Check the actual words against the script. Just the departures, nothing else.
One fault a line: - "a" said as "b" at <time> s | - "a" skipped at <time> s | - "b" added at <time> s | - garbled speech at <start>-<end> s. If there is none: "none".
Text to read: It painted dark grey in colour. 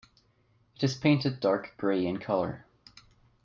- "is" added at 0.8 s